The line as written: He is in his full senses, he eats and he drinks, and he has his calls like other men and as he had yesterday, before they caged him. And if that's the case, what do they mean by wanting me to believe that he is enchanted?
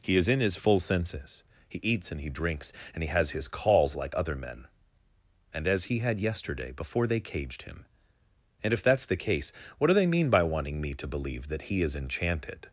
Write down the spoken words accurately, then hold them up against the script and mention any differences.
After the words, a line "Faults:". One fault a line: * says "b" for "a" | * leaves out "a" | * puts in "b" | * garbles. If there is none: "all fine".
He is in his full senses, he eats and he drinks, and he has his calls like other men and as he had yesterday, before they caged him. And if that's the case, what do they mean by wanting me to believe that he is enchanted?
Faults:
all fine